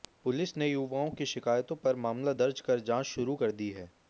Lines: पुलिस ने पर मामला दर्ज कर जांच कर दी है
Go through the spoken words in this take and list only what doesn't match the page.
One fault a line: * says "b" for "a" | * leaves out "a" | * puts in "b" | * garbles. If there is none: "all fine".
* puts in "युवाओं की शिकायतों"
* puts in "शुरू"